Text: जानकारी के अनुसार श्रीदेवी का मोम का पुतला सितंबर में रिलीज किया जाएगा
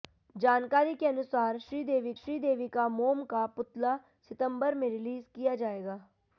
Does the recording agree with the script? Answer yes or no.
no